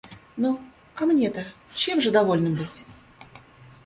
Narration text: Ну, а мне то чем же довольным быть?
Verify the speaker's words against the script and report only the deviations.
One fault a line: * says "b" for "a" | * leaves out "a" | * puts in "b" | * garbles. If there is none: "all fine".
all fine